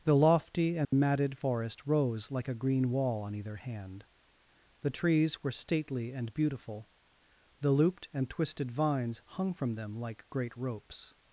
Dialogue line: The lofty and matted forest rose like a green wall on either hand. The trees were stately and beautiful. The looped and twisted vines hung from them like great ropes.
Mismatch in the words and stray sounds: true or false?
true